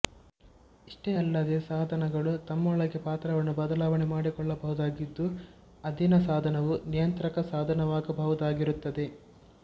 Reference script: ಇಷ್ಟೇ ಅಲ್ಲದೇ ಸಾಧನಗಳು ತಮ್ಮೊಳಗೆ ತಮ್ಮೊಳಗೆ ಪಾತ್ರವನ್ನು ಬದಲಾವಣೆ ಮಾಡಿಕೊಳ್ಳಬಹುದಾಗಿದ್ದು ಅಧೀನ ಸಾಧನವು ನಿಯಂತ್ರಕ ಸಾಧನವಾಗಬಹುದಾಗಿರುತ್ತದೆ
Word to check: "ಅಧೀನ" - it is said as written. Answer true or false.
true